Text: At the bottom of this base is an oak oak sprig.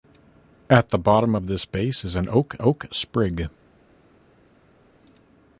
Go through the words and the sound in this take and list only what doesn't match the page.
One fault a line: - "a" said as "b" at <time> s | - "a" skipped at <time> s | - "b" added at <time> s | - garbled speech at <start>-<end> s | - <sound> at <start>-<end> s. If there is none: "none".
none